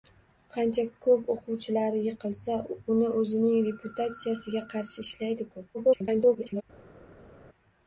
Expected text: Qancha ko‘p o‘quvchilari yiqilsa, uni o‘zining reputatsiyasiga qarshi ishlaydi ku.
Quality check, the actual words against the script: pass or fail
fail